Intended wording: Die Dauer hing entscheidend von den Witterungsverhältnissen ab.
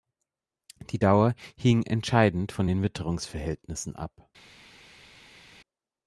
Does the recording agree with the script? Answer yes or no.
yes